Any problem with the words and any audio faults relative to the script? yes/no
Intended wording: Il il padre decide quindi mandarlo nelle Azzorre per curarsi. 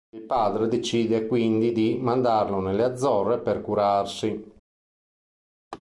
yes